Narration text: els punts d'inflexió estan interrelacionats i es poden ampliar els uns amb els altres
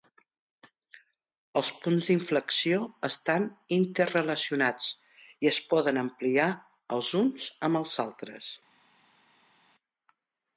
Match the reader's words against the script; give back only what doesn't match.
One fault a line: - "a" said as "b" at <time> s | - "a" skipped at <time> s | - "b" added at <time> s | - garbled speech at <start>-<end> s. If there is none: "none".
none